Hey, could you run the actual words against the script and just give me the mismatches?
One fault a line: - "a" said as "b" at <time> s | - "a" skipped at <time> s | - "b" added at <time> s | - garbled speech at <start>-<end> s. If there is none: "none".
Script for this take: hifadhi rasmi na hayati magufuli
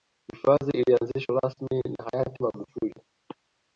- "ilianzishwa" added at 0.8 s